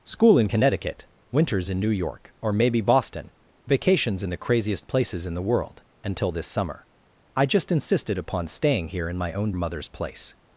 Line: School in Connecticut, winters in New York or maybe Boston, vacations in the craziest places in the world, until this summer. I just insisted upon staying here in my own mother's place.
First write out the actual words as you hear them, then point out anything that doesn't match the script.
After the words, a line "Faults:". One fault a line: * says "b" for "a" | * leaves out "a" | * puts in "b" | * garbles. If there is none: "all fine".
School in Connecticut, winters in New York or maybe Boston, vacations in the craziest places in the world, until this summer. I just insisted upon staying here in my own mother's place.
Faults:
all fine